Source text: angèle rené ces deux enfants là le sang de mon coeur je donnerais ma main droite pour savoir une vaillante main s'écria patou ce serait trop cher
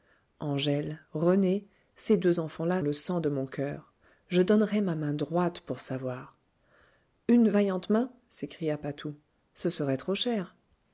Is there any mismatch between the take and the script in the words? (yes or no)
no